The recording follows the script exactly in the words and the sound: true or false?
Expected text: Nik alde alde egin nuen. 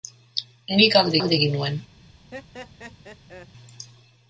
false